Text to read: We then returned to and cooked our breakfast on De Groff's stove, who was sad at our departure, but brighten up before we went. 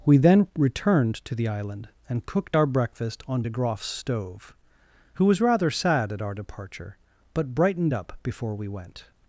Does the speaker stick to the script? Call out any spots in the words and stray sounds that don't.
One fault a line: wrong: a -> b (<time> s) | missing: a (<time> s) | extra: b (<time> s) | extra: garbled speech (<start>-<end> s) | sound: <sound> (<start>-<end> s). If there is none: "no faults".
extra: the island (1.4 s)
extra: rather (5.4 s)
wrong: brighten -> brightened (7.5 s)